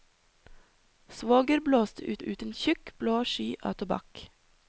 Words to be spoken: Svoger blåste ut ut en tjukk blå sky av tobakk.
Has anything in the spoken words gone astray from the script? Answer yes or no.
no